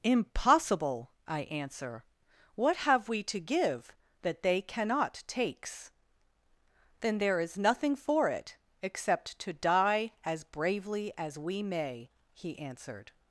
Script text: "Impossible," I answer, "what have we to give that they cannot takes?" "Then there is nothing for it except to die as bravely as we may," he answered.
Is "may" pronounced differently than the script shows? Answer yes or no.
no